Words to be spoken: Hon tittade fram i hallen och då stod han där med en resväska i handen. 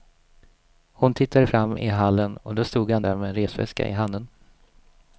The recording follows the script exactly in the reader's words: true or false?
true